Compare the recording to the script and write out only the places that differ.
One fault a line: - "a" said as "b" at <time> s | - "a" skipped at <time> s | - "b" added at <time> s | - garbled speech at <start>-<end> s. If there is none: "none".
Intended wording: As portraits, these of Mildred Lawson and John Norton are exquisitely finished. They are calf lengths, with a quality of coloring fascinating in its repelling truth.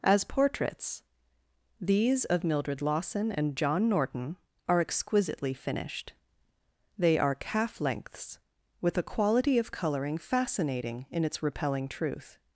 none